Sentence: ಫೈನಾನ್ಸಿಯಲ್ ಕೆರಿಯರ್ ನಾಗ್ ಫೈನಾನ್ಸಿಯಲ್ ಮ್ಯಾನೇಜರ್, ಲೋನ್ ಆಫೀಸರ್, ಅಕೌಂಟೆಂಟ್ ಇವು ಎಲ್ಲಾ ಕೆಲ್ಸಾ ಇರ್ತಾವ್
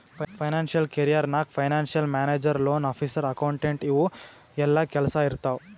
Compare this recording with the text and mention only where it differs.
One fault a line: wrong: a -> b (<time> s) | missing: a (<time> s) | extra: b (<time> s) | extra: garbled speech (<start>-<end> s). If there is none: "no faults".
no faults